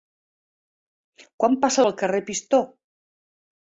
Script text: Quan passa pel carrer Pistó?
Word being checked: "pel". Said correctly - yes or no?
yes